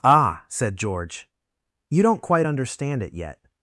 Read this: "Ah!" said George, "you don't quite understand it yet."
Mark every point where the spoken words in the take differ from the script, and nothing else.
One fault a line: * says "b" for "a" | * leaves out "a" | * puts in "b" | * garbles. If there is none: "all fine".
all fine